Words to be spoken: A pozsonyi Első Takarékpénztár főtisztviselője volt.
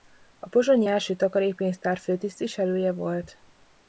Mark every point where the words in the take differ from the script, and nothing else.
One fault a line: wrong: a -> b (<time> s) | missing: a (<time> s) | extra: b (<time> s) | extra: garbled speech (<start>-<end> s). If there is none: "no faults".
no faults